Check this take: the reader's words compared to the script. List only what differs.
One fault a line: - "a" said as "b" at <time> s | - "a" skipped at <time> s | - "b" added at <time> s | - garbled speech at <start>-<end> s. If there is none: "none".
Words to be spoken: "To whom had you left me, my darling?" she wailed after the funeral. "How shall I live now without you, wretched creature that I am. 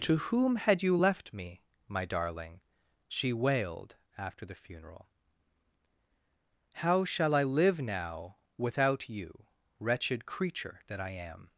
none